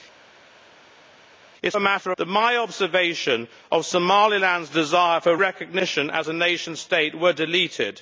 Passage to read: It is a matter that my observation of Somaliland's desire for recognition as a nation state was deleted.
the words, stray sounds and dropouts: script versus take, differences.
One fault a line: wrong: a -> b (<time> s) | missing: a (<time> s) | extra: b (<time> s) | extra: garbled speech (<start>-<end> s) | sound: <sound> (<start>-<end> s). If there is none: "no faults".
no faults